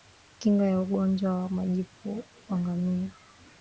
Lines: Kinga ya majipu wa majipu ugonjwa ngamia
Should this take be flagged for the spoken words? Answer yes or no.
yes